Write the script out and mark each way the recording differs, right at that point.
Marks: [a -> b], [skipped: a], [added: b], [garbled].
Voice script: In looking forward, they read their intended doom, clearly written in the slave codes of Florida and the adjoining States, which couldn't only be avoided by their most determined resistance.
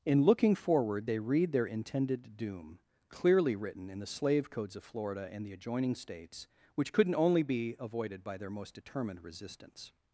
In looking forward, they read their intended doom, clearly written in the slave codes of Florida and the adjoining States, which couldn't only be avoided by their most determined resistance.